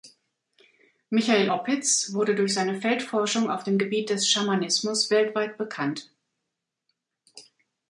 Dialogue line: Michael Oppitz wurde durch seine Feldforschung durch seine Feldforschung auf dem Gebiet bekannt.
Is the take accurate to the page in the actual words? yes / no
no